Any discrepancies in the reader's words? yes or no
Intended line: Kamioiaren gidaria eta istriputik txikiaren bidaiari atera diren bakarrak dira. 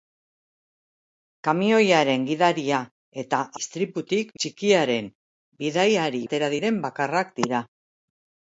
no